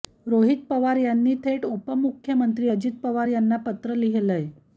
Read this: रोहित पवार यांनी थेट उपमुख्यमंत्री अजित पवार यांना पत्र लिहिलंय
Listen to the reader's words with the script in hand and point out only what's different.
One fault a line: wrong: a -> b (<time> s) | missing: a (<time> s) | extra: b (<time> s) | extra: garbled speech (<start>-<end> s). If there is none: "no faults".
no faults